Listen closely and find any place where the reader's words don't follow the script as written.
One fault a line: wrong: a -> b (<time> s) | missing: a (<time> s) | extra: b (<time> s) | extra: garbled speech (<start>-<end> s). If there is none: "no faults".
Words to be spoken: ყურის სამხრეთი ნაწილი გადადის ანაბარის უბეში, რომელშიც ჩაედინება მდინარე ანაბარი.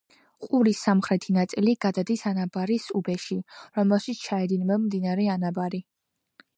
no faults